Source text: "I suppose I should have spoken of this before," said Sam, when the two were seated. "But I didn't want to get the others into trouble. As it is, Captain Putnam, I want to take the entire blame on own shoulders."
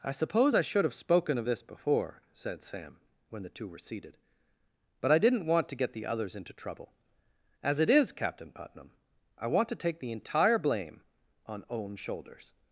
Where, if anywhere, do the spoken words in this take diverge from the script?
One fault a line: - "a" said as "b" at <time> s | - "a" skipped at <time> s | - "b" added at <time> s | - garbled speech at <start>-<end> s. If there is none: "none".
none